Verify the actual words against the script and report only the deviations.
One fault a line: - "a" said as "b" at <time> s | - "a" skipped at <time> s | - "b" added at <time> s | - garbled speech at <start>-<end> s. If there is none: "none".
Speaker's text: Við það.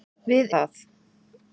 none